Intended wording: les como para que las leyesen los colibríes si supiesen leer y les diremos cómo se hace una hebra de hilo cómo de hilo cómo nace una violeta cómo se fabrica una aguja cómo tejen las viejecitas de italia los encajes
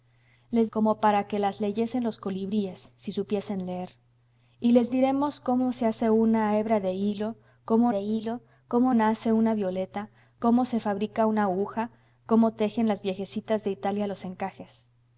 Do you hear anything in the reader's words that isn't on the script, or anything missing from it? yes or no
no